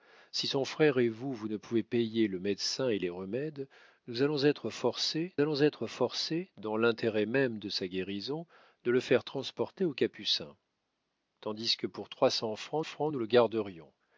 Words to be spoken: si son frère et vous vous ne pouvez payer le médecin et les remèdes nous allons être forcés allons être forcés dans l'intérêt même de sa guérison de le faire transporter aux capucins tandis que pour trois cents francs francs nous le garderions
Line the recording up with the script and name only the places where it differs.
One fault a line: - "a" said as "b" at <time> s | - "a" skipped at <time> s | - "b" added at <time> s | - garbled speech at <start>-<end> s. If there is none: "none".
none